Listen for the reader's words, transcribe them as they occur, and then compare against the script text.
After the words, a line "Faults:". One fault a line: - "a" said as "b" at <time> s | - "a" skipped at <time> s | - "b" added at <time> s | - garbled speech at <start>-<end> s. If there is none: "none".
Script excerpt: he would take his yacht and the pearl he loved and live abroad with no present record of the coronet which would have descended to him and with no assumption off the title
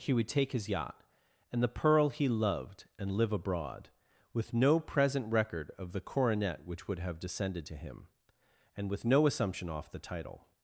he would take his yacht and the pearl he loved and live abroad with no present record of the coronet which would have descended to him and with no assumption off the title
Faults:
none